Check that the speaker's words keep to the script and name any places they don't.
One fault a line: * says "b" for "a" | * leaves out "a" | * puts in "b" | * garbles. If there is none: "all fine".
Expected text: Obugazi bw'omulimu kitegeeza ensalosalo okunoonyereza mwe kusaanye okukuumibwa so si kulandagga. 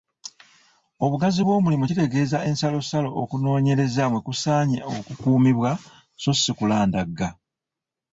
all fine